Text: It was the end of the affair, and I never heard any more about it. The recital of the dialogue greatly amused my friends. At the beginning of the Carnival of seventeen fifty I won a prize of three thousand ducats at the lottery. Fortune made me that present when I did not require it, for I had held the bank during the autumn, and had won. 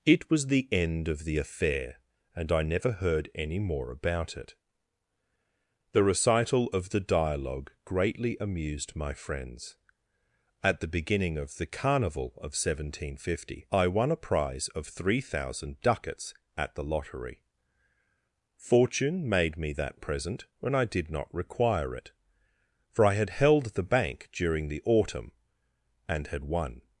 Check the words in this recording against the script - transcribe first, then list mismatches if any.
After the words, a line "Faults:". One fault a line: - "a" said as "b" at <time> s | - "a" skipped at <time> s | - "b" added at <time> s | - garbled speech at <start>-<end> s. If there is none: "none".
It was the end of the affair, and I never heard any more about it. The recital of the dialogue greatly amused my friends. At the beginning of the Carnival of seventeen fifty I won a prize of three thousand ducats at the lottery. Fortune made me that present when I did not require it, for I had held the bank during the autumn, and had won.
Faults:
none